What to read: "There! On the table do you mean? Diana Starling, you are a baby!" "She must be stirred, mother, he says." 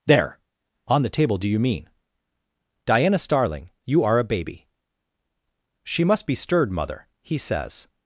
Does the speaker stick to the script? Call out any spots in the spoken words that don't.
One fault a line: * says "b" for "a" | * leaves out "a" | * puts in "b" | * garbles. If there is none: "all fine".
all fine